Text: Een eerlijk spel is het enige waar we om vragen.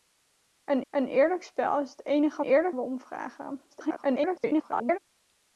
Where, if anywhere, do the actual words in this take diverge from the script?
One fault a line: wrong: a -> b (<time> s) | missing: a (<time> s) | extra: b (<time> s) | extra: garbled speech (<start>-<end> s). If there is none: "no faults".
extra: een (0.9 s)
wrong: waar -> eerlijk (2.4 s)
extra: garbled speech (3.7-5.0 s)